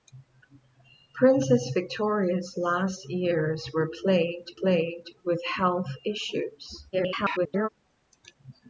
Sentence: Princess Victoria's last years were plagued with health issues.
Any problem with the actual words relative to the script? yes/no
yes